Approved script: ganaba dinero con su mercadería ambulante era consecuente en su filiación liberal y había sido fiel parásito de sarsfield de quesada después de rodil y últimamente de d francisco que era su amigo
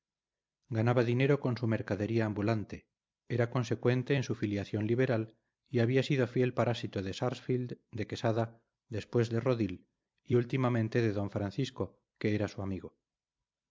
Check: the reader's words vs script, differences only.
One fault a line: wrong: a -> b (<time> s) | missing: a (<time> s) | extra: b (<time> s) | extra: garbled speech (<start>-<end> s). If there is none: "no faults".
no faults